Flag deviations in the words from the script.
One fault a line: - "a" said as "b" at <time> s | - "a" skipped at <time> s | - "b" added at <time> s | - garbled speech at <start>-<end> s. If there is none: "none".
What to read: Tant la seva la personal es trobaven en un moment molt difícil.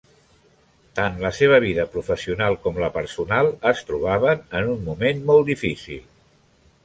- "vida professional com" added at 1.6 s